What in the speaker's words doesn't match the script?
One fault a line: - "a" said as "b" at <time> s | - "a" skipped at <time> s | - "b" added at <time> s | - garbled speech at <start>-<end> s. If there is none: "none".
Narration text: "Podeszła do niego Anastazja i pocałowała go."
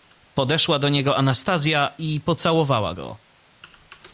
none